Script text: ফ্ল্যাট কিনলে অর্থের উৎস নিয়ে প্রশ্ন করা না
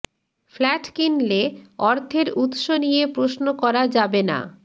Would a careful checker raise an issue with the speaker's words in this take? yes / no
yes